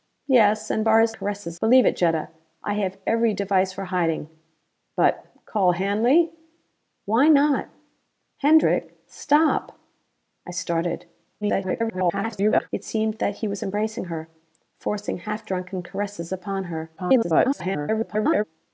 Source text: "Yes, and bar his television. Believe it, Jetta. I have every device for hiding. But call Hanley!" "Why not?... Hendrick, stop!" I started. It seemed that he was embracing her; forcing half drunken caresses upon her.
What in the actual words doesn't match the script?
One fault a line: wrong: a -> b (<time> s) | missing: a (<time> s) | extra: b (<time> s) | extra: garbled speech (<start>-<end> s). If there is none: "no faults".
wrong: television -> caresses (1.1 s)
extra: garbled speech (11.4-12.7 s)
extra: garbled speech (17.0-18.4 s)